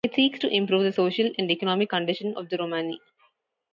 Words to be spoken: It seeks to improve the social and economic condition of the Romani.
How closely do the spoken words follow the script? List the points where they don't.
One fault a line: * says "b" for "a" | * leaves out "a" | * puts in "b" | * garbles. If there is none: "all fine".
all fine